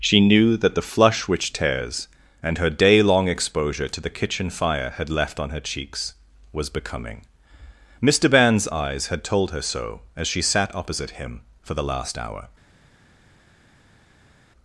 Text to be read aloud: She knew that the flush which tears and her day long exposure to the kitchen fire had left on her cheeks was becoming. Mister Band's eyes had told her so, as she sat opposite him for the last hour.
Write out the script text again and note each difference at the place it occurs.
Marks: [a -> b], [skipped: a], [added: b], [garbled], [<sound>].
She knew that the flush which tears and her day long exposure to the kitchen fire had left on her cheeks was becoming. Mister Band's eyes had told her so, as she sat opposite him for the last hour.